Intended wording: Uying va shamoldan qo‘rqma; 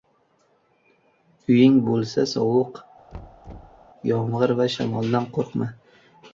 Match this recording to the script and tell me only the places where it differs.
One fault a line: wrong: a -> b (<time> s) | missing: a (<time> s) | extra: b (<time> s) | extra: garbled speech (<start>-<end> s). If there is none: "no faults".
extra: bo‘lsa sovuq yomg‘ir (1.9 s)